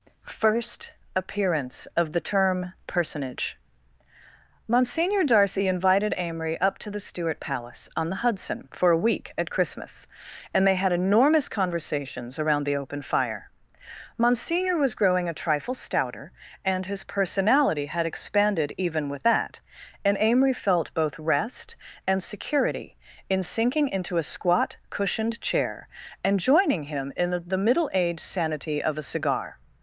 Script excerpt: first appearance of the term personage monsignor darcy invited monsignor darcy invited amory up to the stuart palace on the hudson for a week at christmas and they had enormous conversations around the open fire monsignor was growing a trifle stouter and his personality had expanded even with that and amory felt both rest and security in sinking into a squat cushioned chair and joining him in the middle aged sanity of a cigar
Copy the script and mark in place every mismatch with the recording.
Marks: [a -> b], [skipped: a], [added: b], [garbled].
first appearance of the term personage monsignor darcy invited [skipped: monsignor darcy invited] amory up to the stuart palace on the hudson for a week at christmas and they had enormous conversations around the open fire monsignor was growing a trifle stouter and his personality had expanded even with that and amory felt both rest and security in sinking into a squat cushioned chair and joining him in the middle aged sanity of a cigar